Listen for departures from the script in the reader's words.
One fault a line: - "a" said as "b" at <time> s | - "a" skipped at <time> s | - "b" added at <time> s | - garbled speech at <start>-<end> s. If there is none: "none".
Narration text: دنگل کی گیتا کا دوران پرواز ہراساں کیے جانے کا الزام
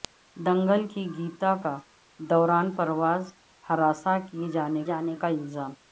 - "جانے" added at 4.8 s